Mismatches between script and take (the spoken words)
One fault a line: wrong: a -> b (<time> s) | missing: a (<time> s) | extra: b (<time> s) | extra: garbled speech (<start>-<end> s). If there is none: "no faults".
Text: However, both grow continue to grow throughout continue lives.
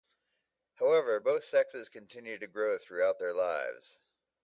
wrong: grow -> sexes (1.4 s)
wrong: continue -> their (3.2 s)